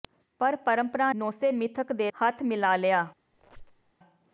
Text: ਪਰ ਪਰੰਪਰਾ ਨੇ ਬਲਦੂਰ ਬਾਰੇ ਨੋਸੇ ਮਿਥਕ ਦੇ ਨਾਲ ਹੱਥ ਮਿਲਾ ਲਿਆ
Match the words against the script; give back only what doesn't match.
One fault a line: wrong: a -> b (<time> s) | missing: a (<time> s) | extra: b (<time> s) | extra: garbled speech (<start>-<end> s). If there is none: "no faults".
missing: ਨੇ ਬਲਦੂਰ ਬਾਰੇ (1.1 s)
missing: ਨਾਲ (2.1 s)